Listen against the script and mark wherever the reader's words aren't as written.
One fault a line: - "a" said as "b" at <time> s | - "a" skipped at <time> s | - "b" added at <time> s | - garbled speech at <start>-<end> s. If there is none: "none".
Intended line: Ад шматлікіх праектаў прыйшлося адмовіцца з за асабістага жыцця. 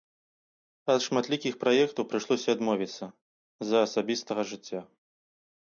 none